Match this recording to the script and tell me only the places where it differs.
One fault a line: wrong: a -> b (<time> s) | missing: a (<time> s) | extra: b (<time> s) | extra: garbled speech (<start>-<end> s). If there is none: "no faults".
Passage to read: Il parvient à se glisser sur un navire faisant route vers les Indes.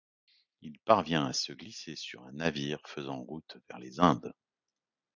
no faults